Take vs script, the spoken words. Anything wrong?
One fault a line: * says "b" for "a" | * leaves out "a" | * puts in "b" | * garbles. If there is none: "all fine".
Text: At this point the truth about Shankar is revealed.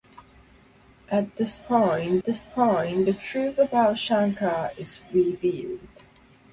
* puts in "this point"